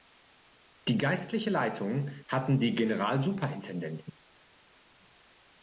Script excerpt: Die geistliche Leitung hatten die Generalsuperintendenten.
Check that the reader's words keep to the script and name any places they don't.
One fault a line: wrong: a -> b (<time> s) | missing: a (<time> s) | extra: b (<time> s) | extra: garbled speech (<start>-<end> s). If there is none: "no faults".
no faults